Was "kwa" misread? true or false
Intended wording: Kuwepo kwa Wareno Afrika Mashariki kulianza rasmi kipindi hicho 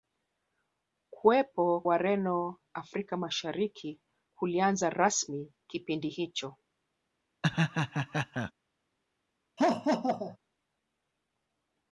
true